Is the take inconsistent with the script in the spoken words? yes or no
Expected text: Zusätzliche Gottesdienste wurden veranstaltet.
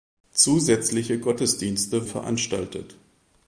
yes